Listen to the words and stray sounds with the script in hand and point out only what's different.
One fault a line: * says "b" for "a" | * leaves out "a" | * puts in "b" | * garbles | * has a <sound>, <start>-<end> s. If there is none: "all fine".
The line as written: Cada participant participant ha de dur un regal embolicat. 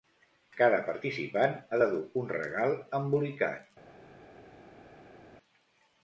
* leaves out "participant"